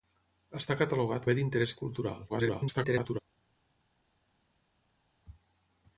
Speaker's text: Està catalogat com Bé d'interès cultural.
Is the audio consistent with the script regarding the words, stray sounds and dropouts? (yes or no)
no